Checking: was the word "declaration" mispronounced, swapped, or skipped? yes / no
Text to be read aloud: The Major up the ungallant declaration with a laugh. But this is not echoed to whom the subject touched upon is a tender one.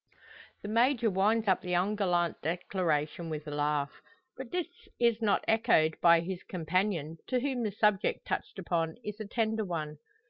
no